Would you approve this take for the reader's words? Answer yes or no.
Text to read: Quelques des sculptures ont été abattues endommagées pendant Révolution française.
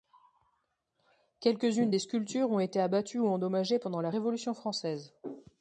no